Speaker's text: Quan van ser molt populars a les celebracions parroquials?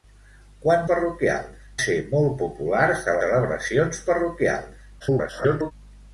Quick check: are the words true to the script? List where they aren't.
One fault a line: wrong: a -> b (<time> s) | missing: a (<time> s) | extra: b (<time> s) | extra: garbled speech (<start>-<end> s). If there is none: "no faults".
wrong: van -> parroquials (0.9 s)
missing: les (3.2 s)
extra: garbled speech (5.0-5.7 s)